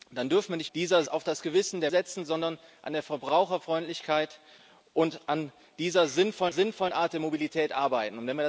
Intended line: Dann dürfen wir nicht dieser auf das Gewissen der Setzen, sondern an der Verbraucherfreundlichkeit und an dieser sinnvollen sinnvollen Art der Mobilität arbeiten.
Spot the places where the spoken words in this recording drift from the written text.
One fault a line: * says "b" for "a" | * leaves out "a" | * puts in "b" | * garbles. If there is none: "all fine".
all fine